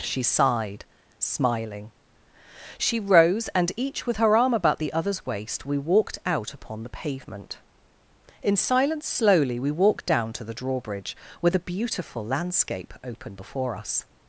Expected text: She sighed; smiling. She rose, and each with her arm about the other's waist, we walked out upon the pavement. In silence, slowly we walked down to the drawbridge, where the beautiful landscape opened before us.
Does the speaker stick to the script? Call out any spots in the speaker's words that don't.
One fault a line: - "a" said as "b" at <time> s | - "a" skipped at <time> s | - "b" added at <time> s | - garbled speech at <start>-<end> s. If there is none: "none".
none